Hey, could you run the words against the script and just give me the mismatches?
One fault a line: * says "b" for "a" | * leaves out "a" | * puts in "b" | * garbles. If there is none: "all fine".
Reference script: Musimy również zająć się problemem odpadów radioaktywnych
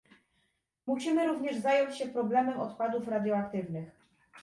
all fine